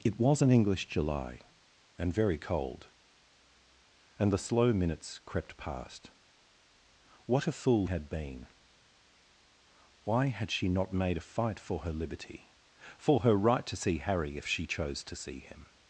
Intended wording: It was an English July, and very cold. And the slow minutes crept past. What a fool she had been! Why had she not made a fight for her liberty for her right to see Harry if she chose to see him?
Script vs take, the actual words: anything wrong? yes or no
yes